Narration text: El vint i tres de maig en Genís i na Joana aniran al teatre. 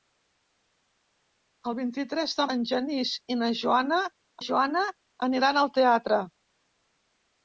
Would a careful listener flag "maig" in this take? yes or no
yes